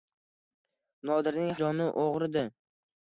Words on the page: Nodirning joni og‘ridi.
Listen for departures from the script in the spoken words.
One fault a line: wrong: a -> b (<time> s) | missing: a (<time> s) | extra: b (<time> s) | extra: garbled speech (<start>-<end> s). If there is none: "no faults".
no faults